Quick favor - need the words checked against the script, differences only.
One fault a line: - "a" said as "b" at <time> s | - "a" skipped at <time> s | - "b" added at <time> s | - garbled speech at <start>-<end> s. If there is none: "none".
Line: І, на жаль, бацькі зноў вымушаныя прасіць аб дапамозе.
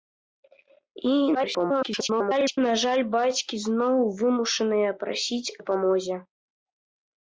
- garbled speech at 1.3-2.6 s
- "аб" skipped at 5.5 s